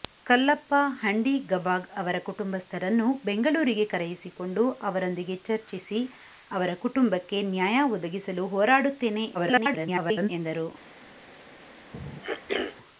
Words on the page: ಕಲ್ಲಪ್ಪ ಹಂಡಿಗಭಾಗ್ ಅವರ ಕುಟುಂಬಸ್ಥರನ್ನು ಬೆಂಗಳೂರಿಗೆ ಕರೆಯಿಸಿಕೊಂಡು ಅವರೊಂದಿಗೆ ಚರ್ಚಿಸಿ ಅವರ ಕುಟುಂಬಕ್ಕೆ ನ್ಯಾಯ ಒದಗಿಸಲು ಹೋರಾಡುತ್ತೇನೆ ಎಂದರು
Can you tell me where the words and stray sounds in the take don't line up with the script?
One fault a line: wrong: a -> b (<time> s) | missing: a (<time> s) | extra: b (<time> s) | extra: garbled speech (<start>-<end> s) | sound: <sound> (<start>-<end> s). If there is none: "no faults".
extra: garbled speech (9.3-10.3 s)
sound: throat clearing (11.9-12.8 s)